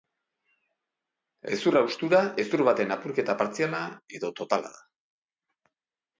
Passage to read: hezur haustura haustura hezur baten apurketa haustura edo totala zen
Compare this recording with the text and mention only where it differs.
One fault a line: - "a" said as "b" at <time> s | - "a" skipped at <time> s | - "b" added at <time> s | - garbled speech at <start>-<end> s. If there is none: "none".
- "haustura" skipped at 2.2 s
- "haustura" said as "partziala" at 3.4 s
- "zen" said as "da" at 4.8 s